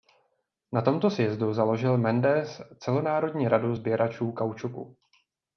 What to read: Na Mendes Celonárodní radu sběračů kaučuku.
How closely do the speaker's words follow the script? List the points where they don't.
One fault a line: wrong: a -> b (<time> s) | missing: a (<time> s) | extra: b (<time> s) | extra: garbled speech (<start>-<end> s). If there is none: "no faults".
extra: tomto sjezdu založil (0.8 s)